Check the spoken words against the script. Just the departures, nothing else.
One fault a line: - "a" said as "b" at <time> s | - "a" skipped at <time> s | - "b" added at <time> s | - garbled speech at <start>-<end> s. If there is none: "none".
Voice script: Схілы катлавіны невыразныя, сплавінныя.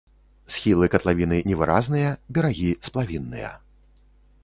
- "берагі" added at 2.4 s